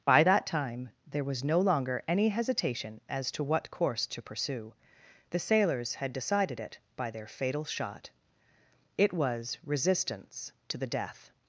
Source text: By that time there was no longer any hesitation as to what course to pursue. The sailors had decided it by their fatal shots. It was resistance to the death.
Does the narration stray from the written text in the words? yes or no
yes